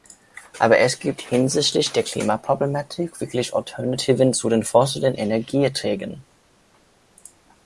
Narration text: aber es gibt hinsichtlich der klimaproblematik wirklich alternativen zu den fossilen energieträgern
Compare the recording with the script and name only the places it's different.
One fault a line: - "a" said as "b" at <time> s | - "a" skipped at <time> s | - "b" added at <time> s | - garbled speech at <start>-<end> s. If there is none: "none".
none